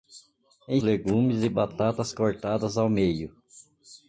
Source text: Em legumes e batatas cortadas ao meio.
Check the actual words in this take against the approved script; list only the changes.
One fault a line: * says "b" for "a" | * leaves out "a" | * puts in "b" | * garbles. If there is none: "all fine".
all fine